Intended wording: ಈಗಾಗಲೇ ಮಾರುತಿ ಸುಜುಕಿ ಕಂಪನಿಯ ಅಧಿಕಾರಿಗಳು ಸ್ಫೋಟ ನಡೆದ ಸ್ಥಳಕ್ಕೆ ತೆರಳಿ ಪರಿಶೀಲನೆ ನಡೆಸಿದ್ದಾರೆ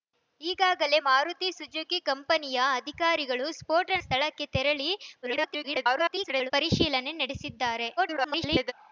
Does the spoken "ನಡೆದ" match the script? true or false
false